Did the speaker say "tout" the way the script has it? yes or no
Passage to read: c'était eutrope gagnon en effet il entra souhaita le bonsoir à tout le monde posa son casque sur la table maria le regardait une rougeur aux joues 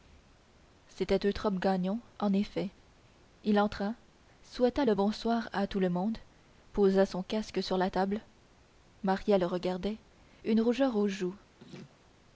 yes